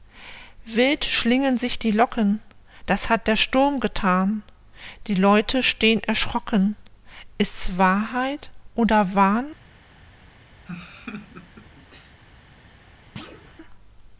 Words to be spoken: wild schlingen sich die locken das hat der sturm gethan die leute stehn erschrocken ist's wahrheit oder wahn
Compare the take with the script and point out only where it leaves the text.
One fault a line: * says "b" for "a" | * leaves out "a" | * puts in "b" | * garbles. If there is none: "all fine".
all fine